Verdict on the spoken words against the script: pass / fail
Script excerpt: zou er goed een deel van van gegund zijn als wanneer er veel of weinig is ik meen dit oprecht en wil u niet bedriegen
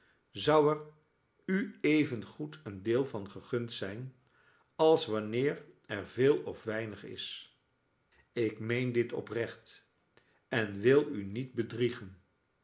fail